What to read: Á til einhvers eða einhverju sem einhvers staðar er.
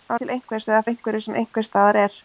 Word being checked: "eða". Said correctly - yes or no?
yes